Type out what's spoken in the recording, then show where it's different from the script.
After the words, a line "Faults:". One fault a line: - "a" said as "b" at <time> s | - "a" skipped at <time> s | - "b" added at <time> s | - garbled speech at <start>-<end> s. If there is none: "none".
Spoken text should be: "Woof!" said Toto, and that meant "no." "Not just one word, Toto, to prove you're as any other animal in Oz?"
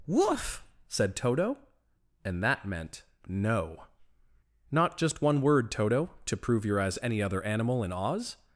"Woof!" said Toto, and that meant "no." "Not just one word, Toto, to prove you're as any other animal in Oz?"
Faults:
none